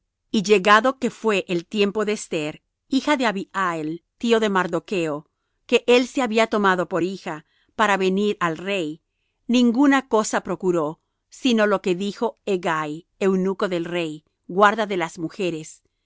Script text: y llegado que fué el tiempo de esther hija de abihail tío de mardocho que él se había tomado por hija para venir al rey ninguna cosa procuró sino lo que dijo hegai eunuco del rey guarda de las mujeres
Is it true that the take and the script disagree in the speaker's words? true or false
false